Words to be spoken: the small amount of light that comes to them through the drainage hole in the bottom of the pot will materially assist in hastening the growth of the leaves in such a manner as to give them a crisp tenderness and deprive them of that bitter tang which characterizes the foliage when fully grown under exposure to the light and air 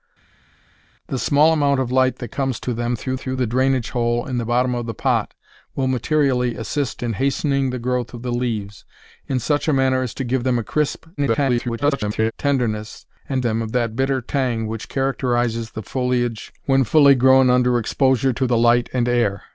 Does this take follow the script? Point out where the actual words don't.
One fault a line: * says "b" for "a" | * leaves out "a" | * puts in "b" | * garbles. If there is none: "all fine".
* puts in "through"
* garbles
* leaves out "deprive"